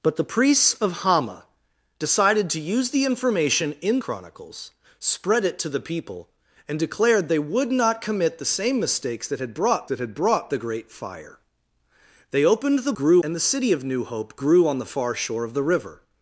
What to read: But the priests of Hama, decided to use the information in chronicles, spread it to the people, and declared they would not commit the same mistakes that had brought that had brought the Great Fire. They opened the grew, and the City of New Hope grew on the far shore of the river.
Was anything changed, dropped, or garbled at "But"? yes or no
no